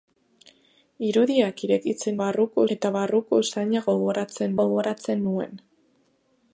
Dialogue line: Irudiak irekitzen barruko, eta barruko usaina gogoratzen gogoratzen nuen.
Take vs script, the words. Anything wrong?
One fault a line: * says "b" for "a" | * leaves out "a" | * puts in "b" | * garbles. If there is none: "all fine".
all fine